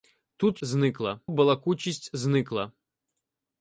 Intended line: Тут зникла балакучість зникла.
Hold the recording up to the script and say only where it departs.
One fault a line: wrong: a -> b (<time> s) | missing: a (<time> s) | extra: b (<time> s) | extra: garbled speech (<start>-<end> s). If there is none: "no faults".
no faults